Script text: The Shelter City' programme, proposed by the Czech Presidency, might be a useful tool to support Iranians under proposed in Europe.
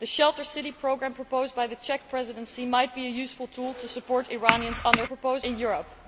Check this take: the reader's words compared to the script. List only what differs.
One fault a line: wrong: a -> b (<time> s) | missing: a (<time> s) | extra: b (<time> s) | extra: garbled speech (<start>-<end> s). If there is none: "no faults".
no faults